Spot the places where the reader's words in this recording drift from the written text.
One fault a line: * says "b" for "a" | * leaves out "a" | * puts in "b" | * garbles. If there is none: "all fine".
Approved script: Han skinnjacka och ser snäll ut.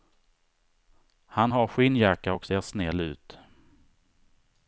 * puts in "har"